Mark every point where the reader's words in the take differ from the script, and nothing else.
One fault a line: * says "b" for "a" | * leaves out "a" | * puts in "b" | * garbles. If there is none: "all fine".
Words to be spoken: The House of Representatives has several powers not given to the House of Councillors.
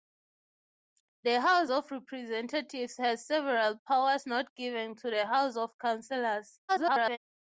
* garbles